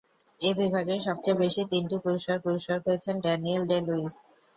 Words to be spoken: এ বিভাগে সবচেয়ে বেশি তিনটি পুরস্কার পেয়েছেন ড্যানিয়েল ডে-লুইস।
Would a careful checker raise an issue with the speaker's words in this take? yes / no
yes